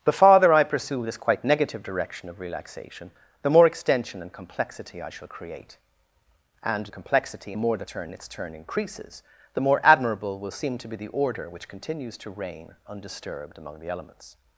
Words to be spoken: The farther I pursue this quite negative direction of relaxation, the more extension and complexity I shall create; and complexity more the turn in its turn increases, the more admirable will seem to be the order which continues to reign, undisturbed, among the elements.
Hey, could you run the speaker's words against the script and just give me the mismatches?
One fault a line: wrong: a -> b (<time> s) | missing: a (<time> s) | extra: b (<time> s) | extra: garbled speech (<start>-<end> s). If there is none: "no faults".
no faults